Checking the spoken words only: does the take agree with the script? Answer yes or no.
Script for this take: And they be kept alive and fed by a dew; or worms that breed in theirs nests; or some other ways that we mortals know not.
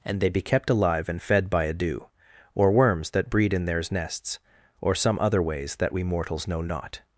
yes